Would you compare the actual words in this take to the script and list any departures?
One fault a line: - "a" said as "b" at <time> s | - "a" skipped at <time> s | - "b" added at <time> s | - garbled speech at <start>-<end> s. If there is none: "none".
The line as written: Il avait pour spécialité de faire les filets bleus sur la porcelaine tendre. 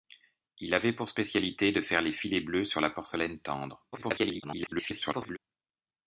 - garbled speech at 3.9-5.4 s